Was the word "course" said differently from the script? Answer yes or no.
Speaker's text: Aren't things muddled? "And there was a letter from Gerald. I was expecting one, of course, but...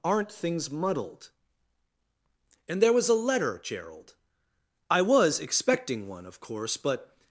no